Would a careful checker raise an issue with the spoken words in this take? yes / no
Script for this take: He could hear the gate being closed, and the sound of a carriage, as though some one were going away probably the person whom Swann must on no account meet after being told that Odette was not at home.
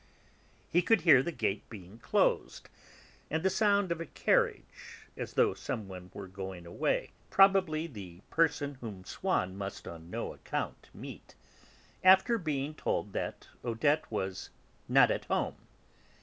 no